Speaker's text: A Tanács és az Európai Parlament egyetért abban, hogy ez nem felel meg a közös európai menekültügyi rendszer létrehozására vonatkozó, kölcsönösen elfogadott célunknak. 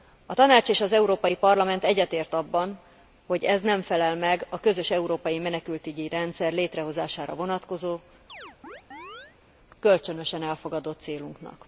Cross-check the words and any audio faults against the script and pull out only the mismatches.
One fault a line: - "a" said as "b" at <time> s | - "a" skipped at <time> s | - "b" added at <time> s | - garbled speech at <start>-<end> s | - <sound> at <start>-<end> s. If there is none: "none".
- chirp at 8.3-9.4 s